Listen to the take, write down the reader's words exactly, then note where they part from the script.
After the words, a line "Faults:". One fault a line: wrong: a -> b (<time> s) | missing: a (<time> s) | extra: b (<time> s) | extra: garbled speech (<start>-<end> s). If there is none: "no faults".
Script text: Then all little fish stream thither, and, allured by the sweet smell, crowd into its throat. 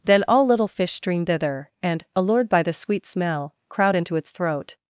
Then all little fish stream thither, and, allured by the sweet smell, crowd into its throat.
Faults:
no faults